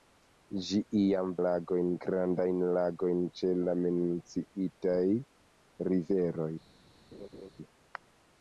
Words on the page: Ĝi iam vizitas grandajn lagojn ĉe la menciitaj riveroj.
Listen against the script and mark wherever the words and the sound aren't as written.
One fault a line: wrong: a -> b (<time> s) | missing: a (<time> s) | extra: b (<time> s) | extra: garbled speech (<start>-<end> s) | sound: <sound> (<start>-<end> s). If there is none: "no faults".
wrong: vizitas -> lagojn (1.4 s)
sound: laugh (7.1-7.5 s)